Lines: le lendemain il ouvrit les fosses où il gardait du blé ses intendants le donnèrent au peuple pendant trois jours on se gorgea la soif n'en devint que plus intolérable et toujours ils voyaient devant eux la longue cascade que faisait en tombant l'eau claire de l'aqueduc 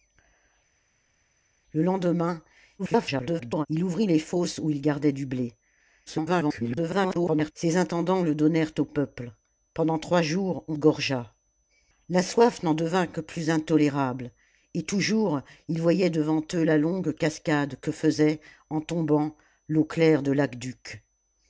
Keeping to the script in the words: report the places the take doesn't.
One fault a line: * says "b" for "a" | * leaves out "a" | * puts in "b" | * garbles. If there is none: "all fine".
* garbles
* garbles
* leaves out "se"